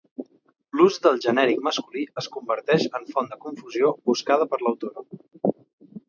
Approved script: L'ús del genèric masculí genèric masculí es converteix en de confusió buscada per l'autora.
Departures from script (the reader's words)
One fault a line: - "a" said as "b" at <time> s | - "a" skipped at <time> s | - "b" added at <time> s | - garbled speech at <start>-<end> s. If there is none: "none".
- "genèric masculí" skipped at 2.0 s
- "font" added at 3.1 s